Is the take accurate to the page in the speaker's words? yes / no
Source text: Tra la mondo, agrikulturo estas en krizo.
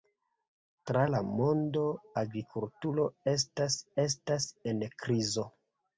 no